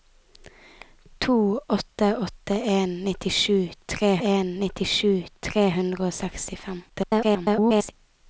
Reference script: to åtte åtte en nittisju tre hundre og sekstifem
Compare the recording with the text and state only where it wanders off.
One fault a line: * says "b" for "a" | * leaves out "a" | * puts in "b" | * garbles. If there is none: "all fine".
* puts in "en nittisju tre"
* garbles